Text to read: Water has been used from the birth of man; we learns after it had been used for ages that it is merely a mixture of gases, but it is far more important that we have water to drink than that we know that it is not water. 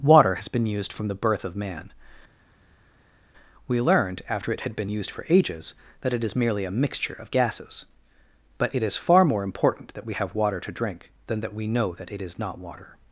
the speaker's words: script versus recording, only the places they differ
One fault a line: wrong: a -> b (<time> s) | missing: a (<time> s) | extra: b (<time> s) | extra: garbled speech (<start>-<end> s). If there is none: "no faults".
wrong: learns -> learned (3.8 s)